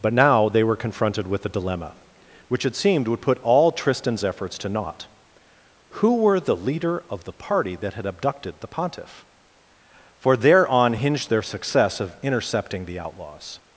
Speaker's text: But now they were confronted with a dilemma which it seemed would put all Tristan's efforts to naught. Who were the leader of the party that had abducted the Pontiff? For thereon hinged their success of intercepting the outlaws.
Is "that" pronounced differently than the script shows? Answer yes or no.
no